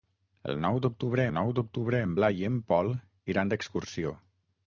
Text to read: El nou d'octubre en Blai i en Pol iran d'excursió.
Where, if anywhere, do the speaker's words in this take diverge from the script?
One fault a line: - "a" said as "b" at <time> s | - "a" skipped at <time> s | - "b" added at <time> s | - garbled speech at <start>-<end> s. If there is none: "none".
- "nou d'octubre" added at 1.4 s